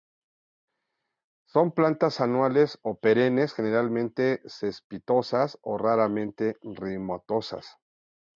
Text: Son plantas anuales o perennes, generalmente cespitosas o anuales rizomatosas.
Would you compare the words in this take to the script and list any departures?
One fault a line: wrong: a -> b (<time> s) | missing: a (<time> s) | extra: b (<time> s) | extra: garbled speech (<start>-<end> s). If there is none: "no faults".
wrong: anuales -> raramente (5.8 s)